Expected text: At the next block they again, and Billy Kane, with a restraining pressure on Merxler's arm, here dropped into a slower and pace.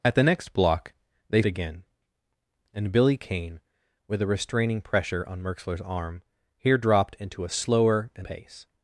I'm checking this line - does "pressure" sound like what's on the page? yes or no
yes